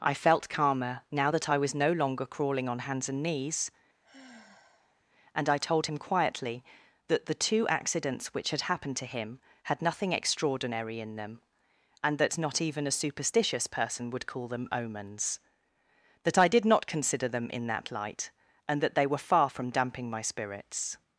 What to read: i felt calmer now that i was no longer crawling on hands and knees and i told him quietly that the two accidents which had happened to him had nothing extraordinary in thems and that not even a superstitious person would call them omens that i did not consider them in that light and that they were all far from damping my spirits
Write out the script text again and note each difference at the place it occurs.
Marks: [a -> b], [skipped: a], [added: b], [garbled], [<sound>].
i felt calmer now that i was no longer crawling on hands and knees [sigh] and i told him quietly that the two accidents which had happened to him had nothing extraordinary in [thems -> them] and that not even a superstitious person would call them omens that i did not consider them in that light and that they were [skipped: all] far from damping my spirits